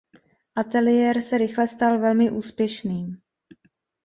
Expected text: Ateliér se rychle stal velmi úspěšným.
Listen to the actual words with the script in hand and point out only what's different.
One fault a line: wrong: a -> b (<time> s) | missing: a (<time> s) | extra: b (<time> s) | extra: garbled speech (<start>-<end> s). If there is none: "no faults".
no faults